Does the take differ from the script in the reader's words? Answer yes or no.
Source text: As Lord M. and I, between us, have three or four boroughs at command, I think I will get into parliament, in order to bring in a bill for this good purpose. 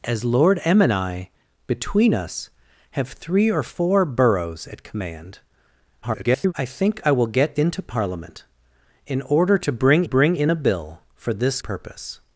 yes